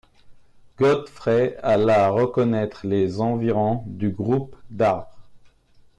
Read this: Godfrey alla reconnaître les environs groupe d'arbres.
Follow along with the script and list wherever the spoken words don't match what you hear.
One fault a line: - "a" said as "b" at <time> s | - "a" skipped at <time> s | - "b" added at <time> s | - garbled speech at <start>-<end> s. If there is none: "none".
- "du" added at 3.8 s